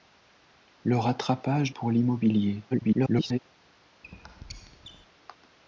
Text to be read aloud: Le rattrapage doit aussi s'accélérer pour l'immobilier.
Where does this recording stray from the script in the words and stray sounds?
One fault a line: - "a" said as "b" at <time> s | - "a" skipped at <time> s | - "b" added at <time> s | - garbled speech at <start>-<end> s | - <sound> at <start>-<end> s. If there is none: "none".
- "doit aussi s'accélérer" skipped at 1.7 s
- garbled speech at 2.7-3.4 s
- squeak at 4.0-5.1 s